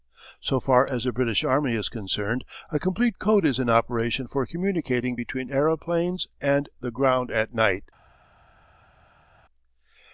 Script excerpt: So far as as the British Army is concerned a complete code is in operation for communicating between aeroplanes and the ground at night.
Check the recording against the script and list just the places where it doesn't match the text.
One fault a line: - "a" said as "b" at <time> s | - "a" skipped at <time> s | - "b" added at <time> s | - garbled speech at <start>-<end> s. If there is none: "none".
- "as" skipped at 1.0 s